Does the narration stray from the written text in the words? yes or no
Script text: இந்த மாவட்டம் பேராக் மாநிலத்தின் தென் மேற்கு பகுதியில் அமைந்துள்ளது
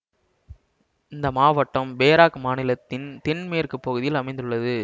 no